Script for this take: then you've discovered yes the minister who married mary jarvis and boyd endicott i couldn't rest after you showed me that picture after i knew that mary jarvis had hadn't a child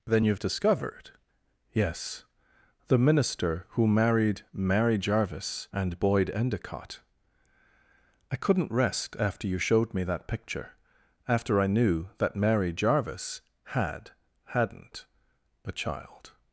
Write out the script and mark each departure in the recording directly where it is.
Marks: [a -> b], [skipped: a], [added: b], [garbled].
then you've discovered yes the minister who married mary jarvis and boyd endicott i couldn't rest after you showed me that picture after i knew that mary jarvis had hadn't a child